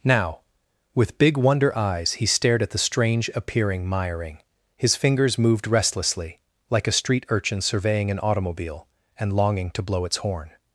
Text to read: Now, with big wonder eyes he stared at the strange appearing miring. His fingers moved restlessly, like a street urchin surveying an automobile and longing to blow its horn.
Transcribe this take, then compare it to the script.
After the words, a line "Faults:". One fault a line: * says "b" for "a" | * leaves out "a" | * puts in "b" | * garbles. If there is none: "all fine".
Now, with big wonder eyes he stared at the strange appearing miring. His fingers moved restlessly, like a street urchin surveying an automobile and longing to blow its horn.
Faults:
all fine